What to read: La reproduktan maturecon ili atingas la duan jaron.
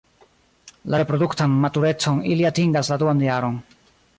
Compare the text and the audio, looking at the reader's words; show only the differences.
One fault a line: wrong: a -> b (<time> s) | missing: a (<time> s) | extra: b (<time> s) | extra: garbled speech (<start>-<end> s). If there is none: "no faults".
no faults